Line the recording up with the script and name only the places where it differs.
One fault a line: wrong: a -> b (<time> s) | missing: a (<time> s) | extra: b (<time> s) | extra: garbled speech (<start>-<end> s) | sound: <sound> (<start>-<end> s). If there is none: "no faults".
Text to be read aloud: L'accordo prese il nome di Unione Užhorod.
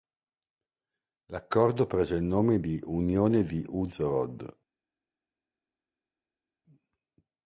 extra: di (3.4 s)